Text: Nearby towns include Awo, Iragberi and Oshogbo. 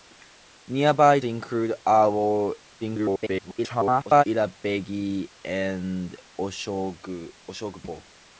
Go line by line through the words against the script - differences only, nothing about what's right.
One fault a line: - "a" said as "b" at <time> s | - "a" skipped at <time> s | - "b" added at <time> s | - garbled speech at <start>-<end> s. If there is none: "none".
- "towns" skipped at 1.2 s
- garbled speech at 2.8-4.2 s